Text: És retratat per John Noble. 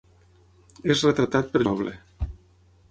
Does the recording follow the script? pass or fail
fail